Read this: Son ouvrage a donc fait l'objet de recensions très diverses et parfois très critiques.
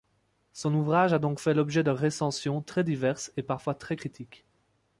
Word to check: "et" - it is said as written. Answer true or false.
true